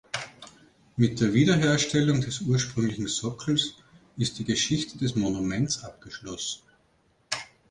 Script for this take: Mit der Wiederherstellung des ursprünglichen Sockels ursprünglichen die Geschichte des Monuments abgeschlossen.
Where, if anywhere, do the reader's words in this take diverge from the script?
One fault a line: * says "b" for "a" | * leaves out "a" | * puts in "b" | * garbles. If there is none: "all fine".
* says "ist" for "ursprünglichen"